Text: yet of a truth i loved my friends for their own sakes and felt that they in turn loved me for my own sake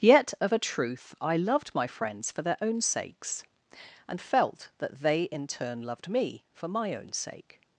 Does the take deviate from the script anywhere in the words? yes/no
no